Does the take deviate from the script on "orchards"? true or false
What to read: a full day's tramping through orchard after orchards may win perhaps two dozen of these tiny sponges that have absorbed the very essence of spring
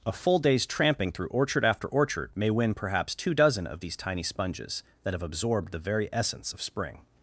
true